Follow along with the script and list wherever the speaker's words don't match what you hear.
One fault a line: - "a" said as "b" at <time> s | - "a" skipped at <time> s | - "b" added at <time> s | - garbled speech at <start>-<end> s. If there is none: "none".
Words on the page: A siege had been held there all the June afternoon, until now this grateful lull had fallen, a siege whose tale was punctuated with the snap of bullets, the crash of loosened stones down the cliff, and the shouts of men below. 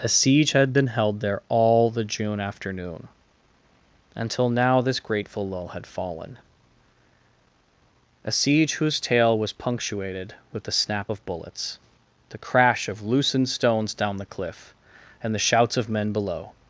none